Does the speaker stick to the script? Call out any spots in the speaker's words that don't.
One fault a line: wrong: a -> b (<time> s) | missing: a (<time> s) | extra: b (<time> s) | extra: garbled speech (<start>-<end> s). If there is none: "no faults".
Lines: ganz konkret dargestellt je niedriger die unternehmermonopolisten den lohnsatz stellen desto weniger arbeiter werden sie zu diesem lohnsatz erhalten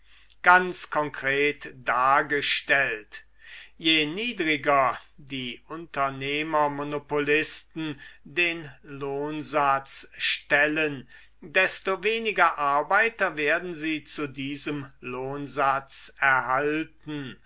no faults